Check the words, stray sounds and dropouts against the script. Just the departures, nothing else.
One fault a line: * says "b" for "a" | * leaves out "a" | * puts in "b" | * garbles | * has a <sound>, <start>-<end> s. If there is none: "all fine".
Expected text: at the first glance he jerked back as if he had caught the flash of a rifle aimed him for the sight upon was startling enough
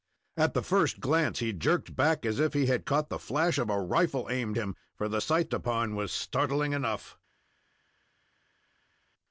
all fine